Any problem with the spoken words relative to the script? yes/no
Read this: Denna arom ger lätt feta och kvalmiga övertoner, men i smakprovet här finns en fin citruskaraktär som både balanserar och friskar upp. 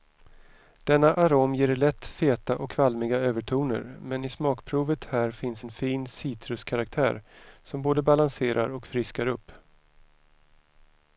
no